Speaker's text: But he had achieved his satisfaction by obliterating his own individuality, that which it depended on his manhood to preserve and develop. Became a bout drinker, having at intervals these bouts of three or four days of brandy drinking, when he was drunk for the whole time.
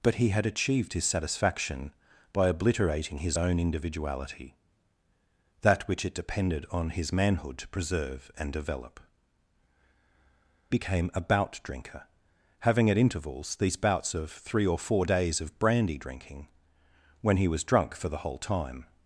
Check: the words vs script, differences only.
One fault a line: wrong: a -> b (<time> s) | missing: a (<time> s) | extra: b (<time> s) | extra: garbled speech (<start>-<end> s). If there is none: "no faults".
no faults